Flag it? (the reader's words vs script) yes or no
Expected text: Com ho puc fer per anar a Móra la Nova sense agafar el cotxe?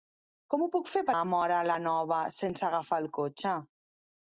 yes